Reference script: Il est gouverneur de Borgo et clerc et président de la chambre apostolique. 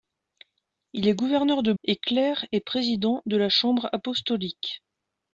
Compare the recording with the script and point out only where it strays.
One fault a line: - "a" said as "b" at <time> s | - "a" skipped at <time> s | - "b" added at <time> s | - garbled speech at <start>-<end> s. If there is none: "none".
- "Borgo" skipped at 1.7 s